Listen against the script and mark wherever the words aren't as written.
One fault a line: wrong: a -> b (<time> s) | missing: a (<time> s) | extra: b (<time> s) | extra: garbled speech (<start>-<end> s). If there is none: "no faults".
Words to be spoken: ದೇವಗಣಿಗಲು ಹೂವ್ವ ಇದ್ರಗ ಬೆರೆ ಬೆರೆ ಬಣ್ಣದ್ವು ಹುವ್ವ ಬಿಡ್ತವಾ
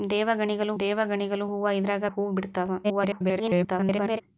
extra: ದೇವಗಣಿಗಲು (0.8 s)
missing: ಬೆರೆ ಬೆರೆ ಬಣ್ಣದ್ವು (2.0 s)
extra: garbled speech (2.8-4.2 s)